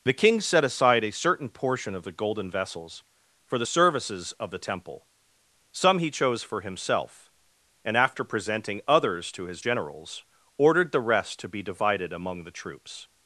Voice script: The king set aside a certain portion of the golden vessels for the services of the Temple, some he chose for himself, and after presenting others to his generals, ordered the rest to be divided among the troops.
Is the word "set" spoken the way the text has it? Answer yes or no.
yes